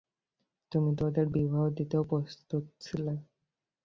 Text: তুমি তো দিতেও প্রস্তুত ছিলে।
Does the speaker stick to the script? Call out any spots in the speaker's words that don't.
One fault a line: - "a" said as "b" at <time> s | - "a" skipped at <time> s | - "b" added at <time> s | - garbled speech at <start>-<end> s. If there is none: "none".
- "ওদের বিবাহ" added at 1.1 s